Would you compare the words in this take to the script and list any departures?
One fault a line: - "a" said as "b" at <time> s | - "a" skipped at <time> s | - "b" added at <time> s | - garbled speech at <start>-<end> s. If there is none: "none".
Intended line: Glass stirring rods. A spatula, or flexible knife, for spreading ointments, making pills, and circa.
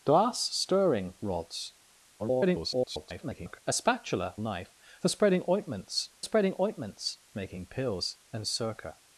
- garbled speech at 2.2-3.6 s
- "or flexible knife for" said as "knife for spreading ointments" at 4.4 s